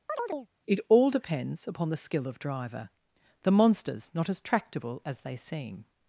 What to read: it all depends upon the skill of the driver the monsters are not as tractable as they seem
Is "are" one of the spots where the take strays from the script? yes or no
yes